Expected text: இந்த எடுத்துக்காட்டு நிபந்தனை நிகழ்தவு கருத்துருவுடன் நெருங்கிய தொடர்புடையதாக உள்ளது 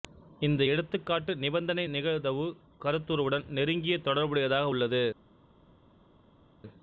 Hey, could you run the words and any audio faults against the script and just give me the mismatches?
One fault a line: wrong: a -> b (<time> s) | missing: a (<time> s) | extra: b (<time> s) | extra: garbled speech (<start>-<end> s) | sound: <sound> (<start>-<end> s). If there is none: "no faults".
no faults